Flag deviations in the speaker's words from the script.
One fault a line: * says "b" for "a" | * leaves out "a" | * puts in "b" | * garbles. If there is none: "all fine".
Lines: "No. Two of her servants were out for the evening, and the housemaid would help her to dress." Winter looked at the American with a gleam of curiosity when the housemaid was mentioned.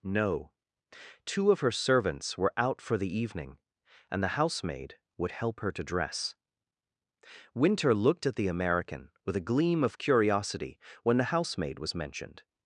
all fine